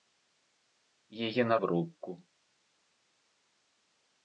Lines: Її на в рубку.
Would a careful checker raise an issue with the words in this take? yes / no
no